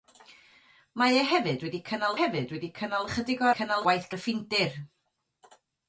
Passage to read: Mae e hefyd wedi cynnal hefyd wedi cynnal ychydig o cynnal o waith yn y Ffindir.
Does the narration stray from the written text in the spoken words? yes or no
no